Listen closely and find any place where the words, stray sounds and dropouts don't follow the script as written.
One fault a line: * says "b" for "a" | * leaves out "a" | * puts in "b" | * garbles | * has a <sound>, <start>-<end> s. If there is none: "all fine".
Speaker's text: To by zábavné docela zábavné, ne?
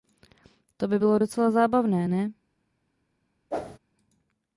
* says "bylo" for "zábavné"
* has a whoosh, 3.5-3.8 s